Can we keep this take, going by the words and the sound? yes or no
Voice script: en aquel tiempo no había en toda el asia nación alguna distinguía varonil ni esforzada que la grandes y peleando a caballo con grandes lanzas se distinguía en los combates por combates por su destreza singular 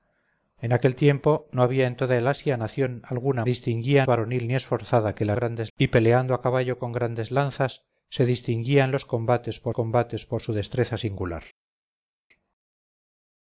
yes